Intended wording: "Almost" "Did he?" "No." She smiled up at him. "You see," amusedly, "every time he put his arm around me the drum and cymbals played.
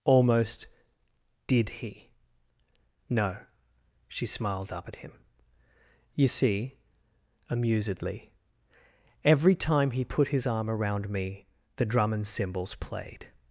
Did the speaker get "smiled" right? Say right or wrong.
right